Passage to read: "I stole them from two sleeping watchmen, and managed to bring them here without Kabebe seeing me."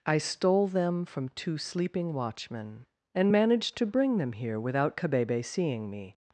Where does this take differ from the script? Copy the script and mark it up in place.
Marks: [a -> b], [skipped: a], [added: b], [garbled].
"I stole them from two sleeping watchmen, and managed to bring them here without Kabebe seeing me."